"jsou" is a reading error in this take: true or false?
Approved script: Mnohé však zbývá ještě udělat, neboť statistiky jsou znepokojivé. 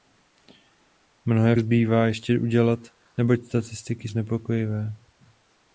true